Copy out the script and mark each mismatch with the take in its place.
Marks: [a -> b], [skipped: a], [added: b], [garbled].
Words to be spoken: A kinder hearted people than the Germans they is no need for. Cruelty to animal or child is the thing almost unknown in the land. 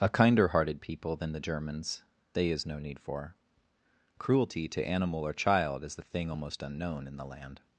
A kinder hearted people than the Germans they is no need for. Cruelty to animal or child is the thing almost unknown in the land.